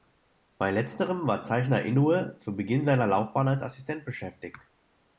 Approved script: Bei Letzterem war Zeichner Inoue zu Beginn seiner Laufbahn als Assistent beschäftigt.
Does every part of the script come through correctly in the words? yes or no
yes